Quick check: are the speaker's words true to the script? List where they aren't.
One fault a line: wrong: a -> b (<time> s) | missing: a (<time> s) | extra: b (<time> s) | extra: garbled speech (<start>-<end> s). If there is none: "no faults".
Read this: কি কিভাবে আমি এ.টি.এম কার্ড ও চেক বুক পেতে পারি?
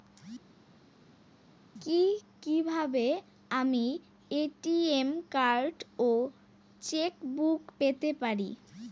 no faults